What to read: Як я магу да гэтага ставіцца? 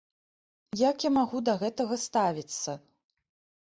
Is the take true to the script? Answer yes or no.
yes